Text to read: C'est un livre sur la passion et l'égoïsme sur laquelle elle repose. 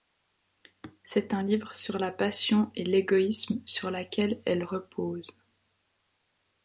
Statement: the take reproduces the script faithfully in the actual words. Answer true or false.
true